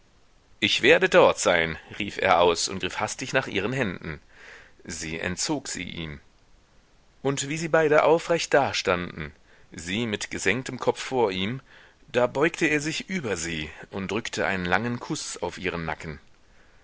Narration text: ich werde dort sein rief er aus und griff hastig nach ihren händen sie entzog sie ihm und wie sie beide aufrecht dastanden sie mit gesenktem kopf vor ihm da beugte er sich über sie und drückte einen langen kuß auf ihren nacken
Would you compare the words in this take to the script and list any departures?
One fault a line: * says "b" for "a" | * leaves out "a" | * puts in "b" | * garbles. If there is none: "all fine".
all fine